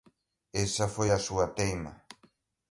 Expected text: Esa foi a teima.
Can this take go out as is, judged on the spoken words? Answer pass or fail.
fail